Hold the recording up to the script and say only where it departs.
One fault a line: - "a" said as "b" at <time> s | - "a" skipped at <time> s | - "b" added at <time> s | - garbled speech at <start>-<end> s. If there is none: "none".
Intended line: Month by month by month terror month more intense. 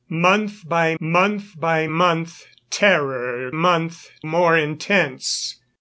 none